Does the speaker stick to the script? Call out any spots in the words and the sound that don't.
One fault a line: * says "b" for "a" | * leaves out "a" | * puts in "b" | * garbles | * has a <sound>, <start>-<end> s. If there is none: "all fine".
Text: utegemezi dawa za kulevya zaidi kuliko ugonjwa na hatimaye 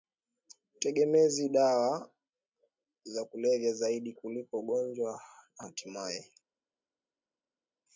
all fine